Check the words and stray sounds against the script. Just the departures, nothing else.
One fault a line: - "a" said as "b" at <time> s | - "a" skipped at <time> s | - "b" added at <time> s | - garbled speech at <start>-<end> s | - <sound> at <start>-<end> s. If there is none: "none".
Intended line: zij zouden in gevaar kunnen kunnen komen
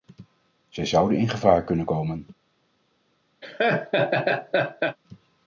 - "kunnen" skipped at 1.9 s
- laugh at 3.4-5.0 s